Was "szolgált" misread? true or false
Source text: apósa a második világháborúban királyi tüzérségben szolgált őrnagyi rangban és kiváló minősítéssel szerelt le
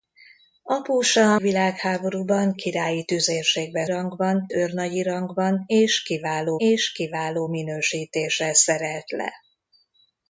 true